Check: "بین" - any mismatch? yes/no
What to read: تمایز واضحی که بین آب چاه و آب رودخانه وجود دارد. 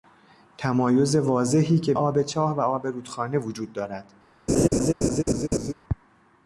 yes